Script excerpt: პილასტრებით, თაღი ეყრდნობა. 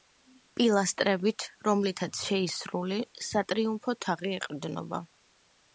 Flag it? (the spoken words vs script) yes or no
yes